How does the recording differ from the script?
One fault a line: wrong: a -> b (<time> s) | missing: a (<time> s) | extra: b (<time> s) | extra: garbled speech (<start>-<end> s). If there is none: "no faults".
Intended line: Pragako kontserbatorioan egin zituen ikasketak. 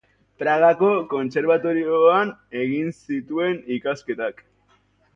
no faults